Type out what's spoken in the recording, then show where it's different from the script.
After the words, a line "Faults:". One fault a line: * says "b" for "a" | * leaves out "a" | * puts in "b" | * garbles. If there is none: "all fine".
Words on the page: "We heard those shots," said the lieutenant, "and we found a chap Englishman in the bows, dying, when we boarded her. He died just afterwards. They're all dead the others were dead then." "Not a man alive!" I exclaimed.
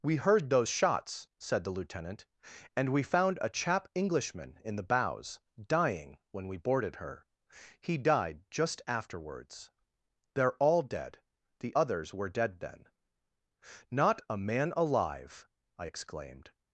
"We heard those shots," said the lieutenant, "and we found a chap Englishman in the bows, dying, when we boarded her. He died just afterwards. They're all dead the others were dead then." "Not a man alive!" I exclaimed.
Faults:
all fine